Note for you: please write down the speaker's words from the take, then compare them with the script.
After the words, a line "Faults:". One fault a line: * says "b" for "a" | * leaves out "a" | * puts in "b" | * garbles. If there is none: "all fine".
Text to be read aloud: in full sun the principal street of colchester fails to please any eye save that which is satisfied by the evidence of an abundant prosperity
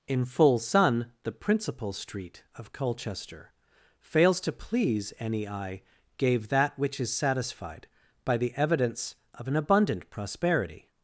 in full sun the principal street of colchester fails to please any eye gave that which is satisfied by the evidence of an abundant prosperity
Faults:
* says "gave" for "save"